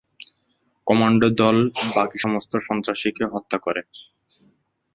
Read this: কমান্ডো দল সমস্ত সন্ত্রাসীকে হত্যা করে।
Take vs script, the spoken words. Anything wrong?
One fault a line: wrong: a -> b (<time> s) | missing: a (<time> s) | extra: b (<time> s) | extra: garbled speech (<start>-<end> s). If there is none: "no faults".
extra: বাকি (1.9 s)